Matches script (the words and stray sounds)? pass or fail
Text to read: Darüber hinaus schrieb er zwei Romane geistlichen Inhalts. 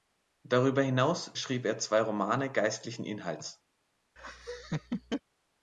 fail